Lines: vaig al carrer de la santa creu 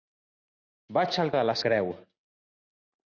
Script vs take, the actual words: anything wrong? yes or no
yes